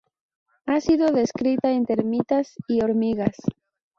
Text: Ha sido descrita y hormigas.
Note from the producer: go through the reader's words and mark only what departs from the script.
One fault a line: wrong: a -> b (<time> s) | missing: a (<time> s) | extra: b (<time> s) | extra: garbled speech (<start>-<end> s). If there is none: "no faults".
extra: en termitas (1.7 s)